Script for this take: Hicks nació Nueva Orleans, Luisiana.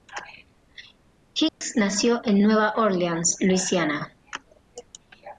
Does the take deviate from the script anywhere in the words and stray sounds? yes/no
yes